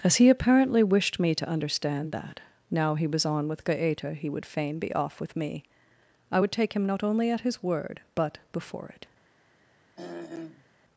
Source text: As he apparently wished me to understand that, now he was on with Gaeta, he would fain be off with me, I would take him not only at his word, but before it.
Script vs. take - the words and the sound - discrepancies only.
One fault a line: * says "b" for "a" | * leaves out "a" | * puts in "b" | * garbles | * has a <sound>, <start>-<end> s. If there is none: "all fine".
* has a throat clearing, 10.0-10.7 s